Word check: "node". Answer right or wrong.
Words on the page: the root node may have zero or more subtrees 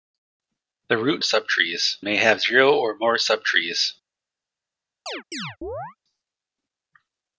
wrong